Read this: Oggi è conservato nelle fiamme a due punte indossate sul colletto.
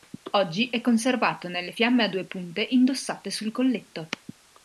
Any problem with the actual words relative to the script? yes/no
no